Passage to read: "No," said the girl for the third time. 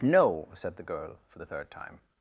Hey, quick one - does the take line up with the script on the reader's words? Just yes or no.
yes